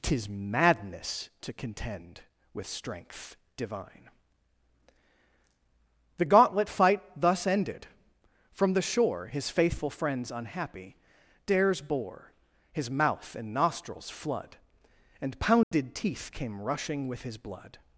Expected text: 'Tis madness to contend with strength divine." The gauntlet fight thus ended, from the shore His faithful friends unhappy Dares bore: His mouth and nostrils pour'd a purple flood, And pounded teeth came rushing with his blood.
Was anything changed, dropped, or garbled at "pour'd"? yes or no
yes